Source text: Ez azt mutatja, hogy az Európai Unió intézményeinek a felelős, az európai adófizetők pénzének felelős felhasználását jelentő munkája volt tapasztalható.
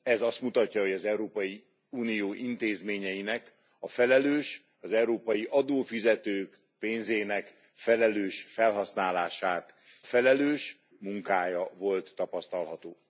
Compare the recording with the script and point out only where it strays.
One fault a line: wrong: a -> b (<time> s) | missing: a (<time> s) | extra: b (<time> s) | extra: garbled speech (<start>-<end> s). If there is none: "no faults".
wrong: jelentő -> felelős (10.0 s)